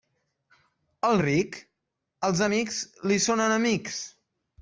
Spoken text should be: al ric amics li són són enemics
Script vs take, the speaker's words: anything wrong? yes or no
yes